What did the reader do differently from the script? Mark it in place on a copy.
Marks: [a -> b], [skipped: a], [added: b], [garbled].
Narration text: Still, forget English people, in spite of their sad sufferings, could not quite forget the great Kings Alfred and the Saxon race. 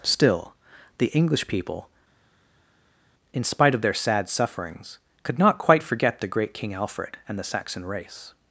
Still, [forget -> the] English people, in spite of their sad sufferings, could not quite forget the great [Kings -> King] Alfred and the Saxon race.